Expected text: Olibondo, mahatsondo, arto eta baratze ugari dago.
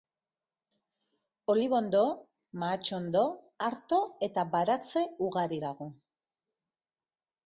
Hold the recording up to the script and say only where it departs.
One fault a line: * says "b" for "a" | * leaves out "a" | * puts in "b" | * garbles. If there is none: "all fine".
all fine